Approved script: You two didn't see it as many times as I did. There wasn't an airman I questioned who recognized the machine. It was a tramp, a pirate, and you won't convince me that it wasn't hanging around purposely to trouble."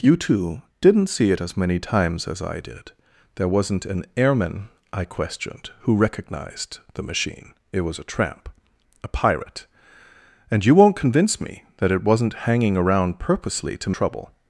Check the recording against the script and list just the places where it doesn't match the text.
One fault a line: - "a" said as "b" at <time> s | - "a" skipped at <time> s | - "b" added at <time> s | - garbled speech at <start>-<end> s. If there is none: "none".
none